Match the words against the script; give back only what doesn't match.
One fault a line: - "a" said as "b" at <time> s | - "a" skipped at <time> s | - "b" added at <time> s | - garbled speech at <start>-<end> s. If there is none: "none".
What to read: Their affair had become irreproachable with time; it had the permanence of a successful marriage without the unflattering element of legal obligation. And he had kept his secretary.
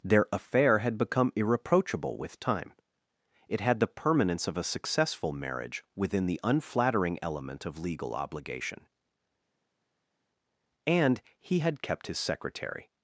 - "without" said as "within" at 6.0 s